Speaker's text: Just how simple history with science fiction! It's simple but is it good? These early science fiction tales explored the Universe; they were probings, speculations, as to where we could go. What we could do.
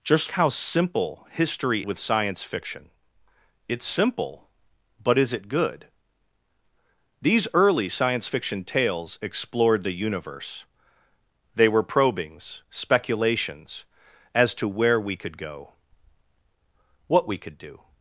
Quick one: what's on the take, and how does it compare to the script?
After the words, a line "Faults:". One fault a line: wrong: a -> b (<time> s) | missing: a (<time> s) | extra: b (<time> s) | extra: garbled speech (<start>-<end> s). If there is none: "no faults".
Just how simple history with science fiction! It's simple but is it good? These early science fiction tales explored the Universe; they were probings, speculations, as to where we could go. What we could do.
Faults:
no faults